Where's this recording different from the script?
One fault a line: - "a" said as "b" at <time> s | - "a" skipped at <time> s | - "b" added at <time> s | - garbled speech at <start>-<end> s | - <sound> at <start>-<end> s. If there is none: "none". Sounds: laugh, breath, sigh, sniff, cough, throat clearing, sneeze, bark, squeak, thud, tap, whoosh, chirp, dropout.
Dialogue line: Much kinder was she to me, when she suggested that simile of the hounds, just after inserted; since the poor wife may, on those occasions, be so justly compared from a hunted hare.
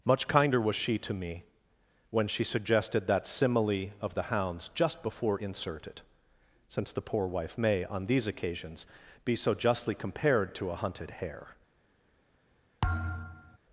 - "after" said as "before" at 5.0 s
- "those" said as "these" at 8.1 s
- "from" said as "to" at 10.5 s
- thud at 12.8-13.6 s